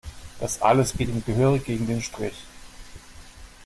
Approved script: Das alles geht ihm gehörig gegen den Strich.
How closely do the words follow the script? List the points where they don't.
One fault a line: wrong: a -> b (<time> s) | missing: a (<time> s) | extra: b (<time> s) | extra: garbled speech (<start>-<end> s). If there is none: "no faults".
no faults